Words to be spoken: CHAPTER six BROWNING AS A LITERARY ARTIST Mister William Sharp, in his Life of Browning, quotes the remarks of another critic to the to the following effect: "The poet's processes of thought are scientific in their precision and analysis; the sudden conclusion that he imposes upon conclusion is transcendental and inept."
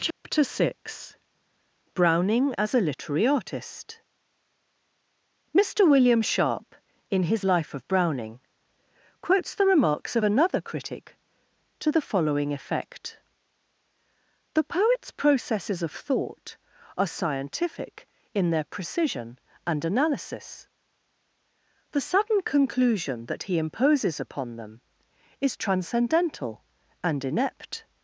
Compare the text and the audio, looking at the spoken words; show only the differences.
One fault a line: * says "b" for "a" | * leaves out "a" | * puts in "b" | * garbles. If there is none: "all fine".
* leaves out "to the"
* says "them" for "conclusion"